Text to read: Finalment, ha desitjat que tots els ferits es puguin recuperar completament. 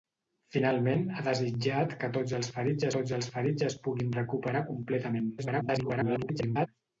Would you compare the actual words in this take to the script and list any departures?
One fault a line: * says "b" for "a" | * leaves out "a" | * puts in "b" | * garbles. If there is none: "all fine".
* puts in "tots els ferits"
* garbles